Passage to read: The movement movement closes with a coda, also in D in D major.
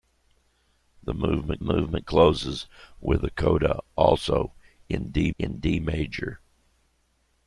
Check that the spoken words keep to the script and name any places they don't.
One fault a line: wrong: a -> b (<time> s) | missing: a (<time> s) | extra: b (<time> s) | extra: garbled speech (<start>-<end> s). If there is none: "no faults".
no faults